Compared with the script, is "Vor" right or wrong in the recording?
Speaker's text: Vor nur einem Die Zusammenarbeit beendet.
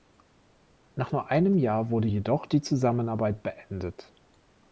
wrong